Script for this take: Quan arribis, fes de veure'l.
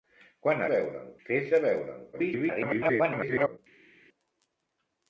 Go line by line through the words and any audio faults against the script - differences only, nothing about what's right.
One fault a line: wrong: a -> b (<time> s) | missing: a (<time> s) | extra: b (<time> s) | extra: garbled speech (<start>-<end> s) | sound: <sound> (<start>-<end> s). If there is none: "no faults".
wrong: arribis -> veure'l (0.7 s)
extra: garbled speech (2.1-3.6 s)